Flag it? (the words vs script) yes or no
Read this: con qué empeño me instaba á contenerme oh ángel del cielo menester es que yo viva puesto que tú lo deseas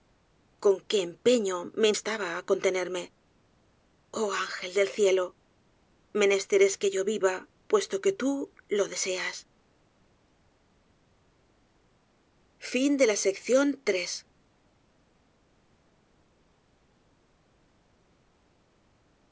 no